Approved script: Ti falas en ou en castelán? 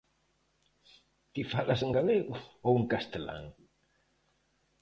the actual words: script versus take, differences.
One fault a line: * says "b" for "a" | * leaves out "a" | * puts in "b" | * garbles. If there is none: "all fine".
* puts in "galego"